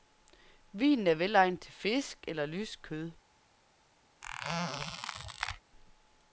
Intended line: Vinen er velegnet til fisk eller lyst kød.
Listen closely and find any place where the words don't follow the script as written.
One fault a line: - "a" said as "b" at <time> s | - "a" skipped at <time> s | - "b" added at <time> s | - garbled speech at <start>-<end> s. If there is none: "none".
none